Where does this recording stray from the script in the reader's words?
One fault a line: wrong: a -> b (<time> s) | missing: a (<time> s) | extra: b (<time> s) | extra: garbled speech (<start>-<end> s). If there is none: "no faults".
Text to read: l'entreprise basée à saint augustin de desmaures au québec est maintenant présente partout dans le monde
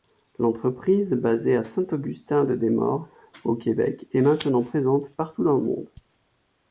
no faults